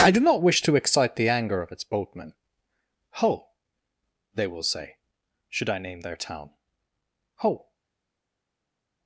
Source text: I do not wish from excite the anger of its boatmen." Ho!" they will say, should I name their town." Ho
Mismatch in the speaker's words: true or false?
true